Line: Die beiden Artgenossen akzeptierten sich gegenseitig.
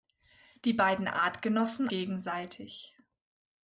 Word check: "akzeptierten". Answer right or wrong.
wrong